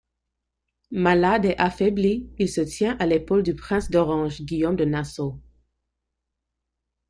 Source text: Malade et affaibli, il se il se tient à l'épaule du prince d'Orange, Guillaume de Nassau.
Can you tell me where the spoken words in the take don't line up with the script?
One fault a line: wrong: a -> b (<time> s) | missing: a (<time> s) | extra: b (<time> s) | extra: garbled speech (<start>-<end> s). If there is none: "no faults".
missing: il se (2.6 s)